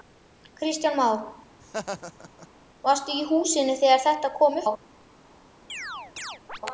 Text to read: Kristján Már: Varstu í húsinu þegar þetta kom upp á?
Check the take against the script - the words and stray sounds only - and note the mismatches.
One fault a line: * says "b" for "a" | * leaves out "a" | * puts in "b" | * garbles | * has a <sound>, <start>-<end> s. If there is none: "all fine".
* has a laugh, 1.6-2.5 s
* leaves out "upp"
* has a chirp, 5.7-6.6 s